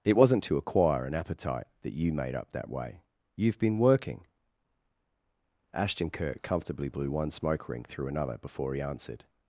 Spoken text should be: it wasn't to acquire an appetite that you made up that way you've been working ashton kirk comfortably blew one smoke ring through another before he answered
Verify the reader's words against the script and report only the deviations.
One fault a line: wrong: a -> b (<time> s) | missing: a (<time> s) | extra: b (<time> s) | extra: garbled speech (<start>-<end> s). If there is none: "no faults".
no faults